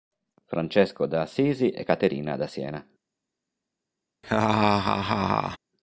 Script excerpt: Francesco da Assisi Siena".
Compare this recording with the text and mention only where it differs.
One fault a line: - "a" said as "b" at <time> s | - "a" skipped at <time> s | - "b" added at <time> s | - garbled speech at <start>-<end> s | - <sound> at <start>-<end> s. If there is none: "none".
- "e Caterina da" added at 1.7 s
- laugh at 4.2-5.6 s